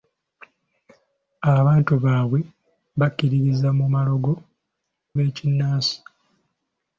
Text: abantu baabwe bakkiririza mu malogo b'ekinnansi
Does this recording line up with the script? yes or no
yes